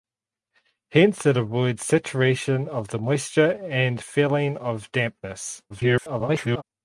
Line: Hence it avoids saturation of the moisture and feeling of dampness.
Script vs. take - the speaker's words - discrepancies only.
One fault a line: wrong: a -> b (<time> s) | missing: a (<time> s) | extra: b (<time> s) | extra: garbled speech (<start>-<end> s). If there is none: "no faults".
extra: garbled speech (5.7-6.6 s)